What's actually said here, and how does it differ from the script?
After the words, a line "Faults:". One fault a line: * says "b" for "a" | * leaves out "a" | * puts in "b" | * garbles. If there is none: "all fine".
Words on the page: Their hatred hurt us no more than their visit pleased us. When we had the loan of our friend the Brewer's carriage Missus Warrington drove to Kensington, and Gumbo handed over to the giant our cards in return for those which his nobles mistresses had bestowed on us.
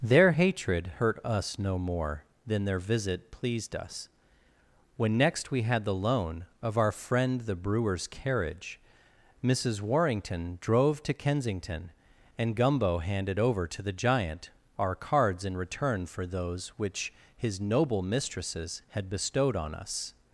Their hatred hurt us no more than their visit pleased us. When next we had the loan of our friend the Brewer's carriage Missus Warrington drove to Kensington, and Gumbo handed over to the giant our cards in return for those which his noble mistresses had bestowed on us.
Faults:
* puts in "next"
* says "noble" for "nobles"